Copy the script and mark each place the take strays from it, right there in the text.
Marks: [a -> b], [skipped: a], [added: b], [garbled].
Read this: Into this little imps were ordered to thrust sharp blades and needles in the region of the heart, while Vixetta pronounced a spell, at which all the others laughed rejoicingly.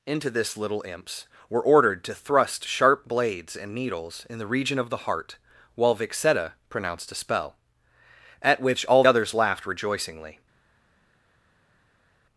Into this little imps were ordered to thrust sharp blades and needles in the region of the heart, while Vixetta pronounced a spell, at which all [skipped: the] others laughed rejoicingly.